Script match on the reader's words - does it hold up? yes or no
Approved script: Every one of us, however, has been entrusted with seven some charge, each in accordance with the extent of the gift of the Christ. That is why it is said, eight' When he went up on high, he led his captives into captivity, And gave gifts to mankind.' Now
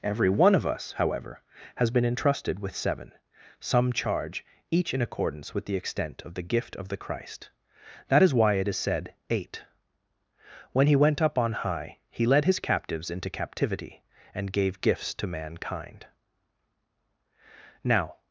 yes